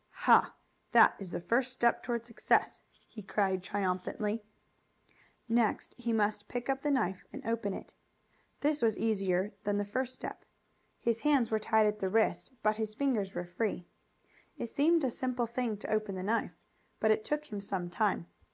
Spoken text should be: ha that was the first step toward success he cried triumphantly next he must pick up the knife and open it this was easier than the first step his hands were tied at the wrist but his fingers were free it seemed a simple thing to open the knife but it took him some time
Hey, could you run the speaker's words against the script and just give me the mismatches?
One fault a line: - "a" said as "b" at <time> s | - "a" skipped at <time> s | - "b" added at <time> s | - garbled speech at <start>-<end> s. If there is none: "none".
- "was" said as "is" at 1.2 s